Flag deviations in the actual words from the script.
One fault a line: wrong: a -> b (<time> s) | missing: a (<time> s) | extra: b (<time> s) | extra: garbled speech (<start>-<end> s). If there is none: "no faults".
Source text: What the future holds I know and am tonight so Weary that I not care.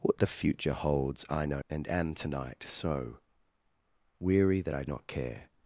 no faults